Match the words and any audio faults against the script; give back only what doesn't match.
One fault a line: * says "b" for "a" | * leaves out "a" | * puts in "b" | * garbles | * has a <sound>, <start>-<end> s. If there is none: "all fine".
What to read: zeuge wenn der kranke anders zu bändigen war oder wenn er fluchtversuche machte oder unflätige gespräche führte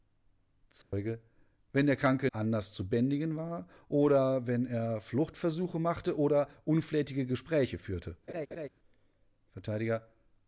* has a dropout, 0.8-0.9 s
* has a laugh, 8.3-8.7 s